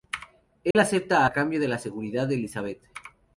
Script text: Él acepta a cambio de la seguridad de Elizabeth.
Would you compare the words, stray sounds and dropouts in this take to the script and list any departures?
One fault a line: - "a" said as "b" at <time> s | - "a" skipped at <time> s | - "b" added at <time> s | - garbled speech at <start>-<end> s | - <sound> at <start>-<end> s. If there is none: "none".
- dropout at 0.7-0.8 s